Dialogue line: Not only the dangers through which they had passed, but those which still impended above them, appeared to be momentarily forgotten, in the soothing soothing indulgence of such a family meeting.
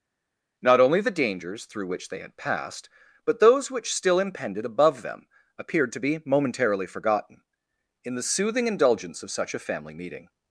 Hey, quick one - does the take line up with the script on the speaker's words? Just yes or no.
no